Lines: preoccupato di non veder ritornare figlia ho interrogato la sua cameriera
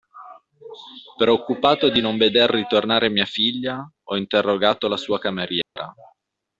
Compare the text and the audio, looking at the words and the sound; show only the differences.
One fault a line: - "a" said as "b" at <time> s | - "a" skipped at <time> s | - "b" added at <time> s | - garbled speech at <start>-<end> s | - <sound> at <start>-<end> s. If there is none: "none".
- "mia" added at 3.1 s
- dropout at 5.6-5.8 s